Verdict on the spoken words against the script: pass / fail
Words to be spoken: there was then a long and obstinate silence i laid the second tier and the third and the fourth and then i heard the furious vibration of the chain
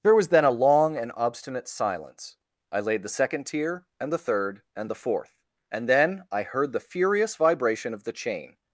pass